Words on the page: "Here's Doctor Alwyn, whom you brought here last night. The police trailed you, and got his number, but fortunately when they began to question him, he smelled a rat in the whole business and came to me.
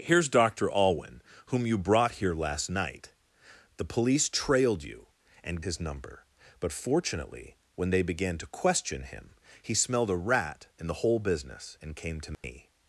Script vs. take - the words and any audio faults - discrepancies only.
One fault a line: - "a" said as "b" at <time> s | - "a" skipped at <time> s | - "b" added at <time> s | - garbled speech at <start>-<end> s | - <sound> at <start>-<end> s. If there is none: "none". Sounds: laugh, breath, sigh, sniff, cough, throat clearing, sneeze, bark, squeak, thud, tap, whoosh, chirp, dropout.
- "got" skipped at 5.6 s
- dropout at 12.3-12.4 s